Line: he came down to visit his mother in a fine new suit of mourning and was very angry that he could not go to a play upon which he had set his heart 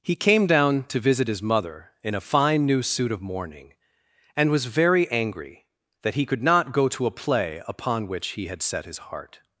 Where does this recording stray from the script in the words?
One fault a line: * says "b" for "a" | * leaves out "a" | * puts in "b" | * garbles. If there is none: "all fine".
all fine